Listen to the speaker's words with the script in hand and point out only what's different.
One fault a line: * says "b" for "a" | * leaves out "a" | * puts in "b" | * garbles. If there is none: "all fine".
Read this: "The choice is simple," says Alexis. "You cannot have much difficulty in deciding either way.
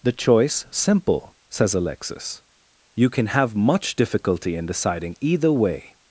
* leaves out "is"
* says "can" for "cannot"